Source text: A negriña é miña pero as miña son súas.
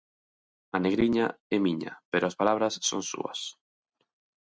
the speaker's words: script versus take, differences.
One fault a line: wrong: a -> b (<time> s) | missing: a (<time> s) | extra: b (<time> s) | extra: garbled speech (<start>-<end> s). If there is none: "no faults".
wrong: miña -> palabras (2.4 s)